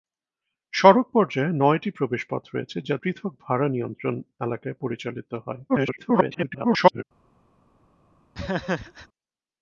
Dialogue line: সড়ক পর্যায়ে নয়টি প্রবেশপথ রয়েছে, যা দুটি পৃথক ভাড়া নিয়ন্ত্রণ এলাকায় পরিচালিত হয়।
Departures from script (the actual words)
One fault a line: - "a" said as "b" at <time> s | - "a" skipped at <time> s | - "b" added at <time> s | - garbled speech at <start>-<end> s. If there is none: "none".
- "দুটি" skipped at 3.0 s
- garbled speech at 5.7-7.0 s